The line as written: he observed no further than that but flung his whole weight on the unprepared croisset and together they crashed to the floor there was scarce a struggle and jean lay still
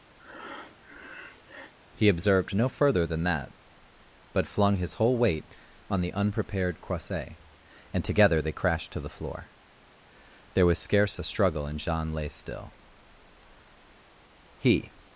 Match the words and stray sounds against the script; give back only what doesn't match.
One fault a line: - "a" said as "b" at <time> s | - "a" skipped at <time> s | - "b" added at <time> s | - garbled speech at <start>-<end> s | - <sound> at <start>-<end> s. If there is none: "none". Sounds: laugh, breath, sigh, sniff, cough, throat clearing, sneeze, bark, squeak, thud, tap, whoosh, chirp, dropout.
- breath at 0.2-1.7 s
- "he" added at 14.6 s